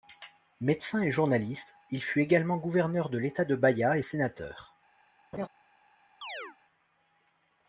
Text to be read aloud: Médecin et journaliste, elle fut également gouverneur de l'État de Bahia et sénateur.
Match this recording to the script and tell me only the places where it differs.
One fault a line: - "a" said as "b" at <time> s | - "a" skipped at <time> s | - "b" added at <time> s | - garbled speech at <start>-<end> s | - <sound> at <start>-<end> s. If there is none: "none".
- "elle" said as "il" at 1.9 s
- laugh at 5.3-5.5 s
- chirp at 6.2-6.6 s